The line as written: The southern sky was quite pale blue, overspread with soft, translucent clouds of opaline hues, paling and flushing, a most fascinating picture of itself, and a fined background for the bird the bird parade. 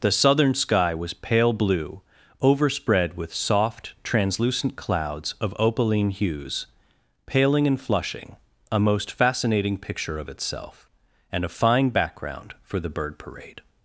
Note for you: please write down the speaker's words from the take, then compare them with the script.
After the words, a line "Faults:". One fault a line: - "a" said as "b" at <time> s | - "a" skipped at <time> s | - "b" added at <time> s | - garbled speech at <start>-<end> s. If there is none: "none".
The southern sky was pale blue, overspread with soft, translucent clouds of opaline hues, paling and flushing, a most fascinating picture of itself, and a fine background for the bird parade.
Faults:
- "quite" skipped at 1.1 s
- "fined" said as "fine" at 11.5 s
- "the bird" skipped at 13.2 s